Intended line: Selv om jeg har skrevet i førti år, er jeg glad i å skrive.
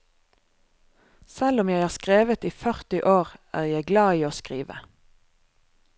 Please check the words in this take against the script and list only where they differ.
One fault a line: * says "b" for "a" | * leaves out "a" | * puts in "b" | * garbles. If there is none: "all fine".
all fine